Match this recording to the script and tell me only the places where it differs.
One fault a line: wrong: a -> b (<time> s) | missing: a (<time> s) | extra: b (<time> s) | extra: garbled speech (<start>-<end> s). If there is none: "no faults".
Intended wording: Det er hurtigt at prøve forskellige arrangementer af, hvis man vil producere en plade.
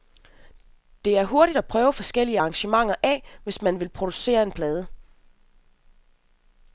no faults